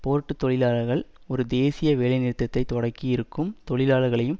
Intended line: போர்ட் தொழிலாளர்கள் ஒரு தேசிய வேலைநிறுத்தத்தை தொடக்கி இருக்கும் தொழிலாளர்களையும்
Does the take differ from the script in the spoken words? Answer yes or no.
no